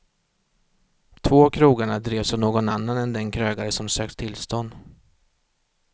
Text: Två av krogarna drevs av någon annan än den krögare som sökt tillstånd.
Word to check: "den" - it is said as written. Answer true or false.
true